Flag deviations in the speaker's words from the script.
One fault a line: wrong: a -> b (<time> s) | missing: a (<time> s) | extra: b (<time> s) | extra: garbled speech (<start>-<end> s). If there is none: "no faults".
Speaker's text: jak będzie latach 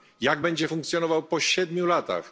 extra: funkcjonował po siedmiu (0.6 s)